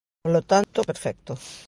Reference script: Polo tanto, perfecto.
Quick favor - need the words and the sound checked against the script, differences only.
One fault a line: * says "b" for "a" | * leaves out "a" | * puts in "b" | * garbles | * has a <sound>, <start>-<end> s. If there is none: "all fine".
* has a dropout, 0.6-0.7 s